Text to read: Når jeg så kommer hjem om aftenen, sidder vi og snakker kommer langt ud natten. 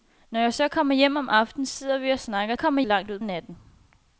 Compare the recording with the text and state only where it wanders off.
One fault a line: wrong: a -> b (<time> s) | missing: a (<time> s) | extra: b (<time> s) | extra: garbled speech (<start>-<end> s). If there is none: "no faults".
no faults